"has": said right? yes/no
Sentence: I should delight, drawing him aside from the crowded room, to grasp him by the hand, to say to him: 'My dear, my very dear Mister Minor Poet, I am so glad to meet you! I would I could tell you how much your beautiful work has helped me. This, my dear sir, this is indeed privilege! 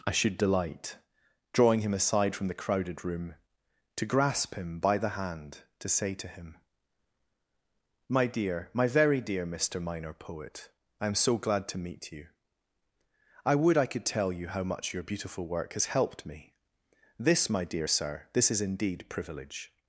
yes